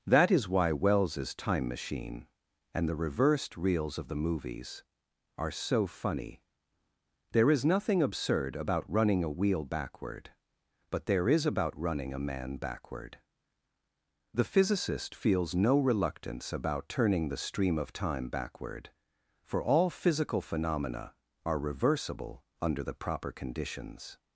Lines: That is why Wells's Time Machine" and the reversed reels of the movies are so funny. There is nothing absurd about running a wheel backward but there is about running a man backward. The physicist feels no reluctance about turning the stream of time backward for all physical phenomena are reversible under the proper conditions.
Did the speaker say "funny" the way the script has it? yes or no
yes